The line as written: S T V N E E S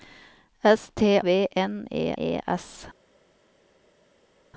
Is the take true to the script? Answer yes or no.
yes